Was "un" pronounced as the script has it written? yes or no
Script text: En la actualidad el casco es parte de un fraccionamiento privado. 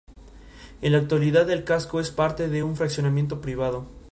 yes